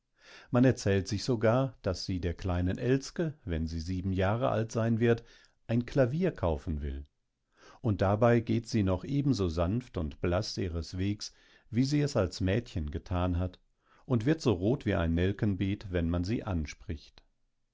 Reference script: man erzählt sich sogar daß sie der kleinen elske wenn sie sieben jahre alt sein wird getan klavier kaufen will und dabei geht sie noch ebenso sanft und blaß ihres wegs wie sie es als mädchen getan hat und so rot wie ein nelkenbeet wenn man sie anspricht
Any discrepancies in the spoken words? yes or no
yes